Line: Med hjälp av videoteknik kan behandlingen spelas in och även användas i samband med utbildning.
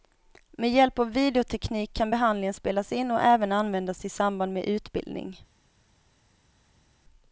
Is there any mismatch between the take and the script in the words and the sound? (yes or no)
no